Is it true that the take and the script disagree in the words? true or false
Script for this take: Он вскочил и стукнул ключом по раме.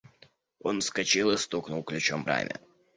true